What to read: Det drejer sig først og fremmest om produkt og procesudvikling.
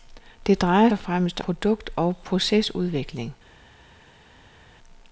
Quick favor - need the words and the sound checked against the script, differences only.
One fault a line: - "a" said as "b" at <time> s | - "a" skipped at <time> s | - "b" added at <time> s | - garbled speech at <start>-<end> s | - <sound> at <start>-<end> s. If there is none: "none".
- "sig først" skipped at 0.9 s
- "om" skipped at 1.4 s